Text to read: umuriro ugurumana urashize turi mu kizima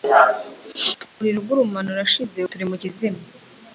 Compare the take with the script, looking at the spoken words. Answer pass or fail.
pass